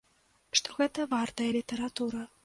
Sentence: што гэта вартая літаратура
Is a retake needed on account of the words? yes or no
no